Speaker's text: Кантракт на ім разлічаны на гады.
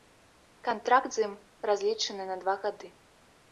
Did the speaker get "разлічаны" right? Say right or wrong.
right